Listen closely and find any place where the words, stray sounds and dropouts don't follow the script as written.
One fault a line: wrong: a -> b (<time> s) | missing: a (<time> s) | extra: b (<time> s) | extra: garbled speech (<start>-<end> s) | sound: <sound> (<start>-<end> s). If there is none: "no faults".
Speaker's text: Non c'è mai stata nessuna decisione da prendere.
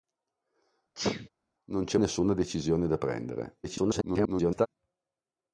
sound: sneeze (0.9-1.3 s)
missing: mai stata (2.0 s)
extra: garbled speech (3.6-4.7 s)